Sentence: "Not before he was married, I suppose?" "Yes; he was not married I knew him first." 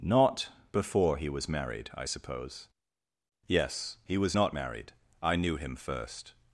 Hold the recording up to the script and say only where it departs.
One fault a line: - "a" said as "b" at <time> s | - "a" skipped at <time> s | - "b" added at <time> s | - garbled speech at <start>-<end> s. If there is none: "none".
none